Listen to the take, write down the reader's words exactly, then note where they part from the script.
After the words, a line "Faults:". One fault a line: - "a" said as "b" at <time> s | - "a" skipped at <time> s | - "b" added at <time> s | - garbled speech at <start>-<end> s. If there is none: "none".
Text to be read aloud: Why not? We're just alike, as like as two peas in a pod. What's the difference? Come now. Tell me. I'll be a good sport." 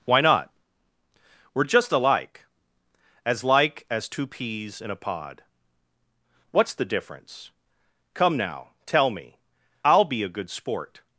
Why not? We're just alike, as like as two peas in a pod. What's the difference? Come now. Tell me. I'll be a good sport."
Faults:
none